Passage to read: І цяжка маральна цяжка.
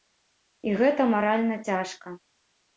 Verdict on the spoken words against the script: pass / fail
fail